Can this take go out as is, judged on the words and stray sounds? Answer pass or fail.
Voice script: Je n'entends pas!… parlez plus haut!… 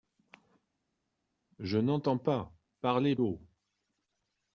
fail